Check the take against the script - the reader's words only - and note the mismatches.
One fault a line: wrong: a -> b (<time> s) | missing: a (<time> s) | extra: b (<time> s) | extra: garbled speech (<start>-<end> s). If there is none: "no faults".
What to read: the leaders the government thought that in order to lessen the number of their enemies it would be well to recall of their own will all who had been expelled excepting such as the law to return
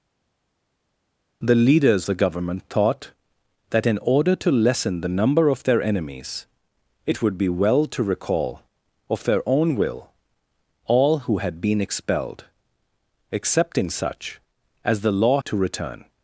no faults